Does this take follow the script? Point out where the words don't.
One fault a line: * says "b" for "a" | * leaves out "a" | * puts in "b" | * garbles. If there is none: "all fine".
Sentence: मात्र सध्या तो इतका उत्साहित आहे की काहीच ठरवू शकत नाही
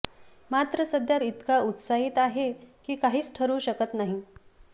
* leaves out "तो"